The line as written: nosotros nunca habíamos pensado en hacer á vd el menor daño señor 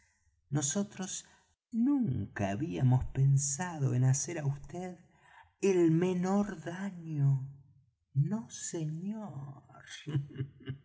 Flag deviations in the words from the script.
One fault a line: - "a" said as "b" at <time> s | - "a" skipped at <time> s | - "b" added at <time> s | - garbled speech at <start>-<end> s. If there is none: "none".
- "no" added at 8.1 s